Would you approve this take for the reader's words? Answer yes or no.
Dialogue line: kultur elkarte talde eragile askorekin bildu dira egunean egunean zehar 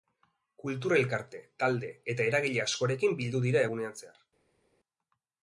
no